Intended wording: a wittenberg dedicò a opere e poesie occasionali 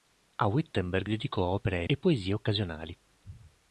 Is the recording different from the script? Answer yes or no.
no